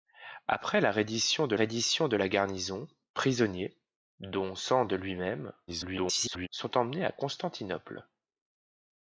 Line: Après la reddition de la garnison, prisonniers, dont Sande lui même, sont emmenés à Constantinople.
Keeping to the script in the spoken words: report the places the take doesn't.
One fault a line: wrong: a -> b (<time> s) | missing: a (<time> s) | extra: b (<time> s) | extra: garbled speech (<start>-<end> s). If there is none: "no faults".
extra: reddition de (1.5 s)
extra: garbled speech (5.7-6.5 s)